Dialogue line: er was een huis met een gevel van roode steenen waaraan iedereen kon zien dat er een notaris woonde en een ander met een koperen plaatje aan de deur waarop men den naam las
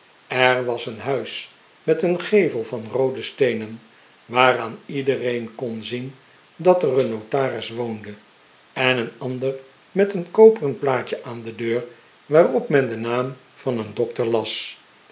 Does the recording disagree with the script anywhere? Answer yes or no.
yes